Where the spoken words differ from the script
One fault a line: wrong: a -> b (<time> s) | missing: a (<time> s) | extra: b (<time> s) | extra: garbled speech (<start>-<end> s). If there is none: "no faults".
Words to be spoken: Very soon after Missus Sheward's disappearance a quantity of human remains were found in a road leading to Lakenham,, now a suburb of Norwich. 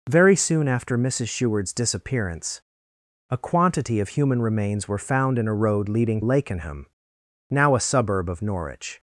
missing: to (6.2 s)